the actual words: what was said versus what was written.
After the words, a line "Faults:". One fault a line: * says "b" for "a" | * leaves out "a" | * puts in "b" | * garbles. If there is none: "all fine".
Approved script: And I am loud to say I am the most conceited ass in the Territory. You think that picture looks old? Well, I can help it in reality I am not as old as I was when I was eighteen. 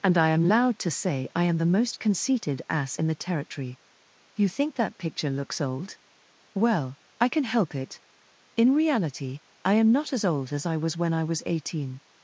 And I am loud to say I am the most conceited ass in the Territory. You think that picture looks old? Well, I can help it in reality I am not as old as I was when I was eighteen.
Faults:
all fine